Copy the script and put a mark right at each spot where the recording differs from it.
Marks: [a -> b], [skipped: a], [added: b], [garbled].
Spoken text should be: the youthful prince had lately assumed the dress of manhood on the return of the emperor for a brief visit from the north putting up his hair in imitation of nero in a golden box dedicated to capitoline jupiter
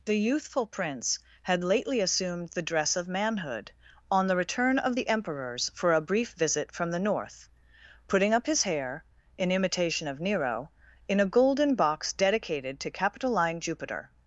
the youthful prince had lately assumed the dress of manhood on the return of the [emperor -> emperors] for a brief visit from the north putting up his hair in imitation of nero in a golden box dedicated to capitoline jupiter